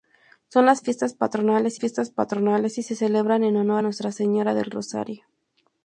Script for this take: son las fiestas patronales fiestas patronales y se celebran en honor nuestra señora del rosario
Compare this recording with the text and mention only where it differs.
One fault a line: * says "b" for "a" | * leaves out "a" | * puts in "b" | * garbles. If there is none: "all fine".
all fine